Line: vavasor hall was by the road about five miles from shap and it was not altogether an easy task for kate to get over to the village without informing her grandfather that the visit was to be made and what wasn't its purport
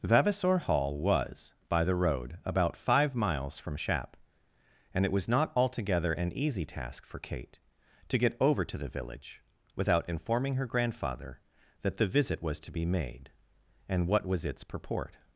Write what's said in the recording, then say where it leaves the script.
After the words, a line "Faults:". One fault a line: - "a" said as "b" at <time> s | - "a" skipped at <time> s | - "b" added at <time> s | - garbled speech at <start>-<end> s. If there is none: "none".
vavasor hall was by the road about five miles from shap and it was not altogether an easy task for kate to get over to the village without informing her grandfather that the visit was to be made and what was its purport
Faults:
- "wasn't" said as "was" at 14.2 s